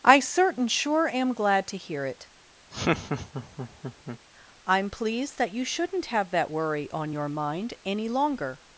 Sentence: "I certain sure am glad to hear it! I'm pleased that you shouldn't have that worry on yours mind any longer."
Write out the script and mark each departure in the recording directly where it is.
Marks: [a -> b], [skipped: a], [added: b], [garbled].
"I certain sure am glad to hear it! I'm pleased that you shouldn't have that worry on [yours -> your] mind any longer."